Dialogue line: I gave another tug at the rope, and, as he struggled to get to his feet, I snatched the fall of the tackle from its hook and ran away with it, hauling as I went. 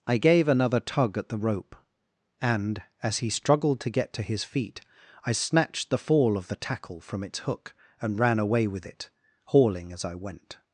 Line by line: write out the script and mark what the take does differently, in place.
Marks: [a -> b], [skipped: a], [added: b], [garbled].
I gave another tug at the rope, and, as he struggled to get to his feet, I snatched the fall of the tackle from its hook and ran away with it, hauling as I went.